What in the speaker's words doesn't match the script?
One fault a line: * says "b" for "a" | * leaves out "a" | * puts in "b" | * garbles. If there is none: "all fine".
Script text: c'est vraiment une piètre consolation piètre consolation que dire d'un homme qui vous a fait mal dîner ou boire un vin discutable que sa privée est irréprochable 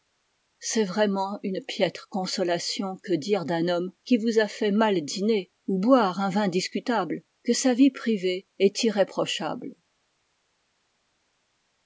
* leaves out "piètre consolation"
* puts in "vie"